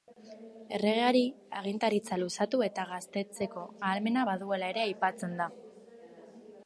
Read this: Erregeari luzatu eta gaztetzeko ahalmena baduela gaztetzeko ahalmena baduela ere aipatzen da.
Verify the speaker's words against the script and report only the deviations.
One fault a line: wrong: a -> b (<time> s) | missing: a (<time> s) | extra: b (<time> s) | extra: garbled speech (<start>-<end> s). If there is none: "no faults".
extra: agintaritza (1.6 s)
missing: gaztetzeko ahalmena baduela (4.7 s)